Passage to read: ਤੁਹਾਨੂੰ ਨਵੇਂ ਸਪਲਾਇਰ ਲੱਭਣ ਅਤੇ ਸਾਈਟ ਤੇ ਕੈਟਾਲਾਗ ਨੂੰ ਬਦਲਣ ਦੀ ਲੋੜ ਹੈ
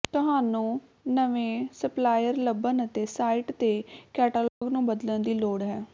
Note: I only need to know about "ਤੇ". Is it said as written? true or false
true